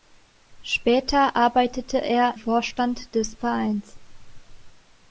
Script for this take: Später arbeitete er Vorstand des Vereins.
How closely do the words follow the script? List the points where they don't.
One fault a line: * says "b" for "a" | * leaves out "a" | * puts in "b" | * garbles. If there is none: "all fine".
all fine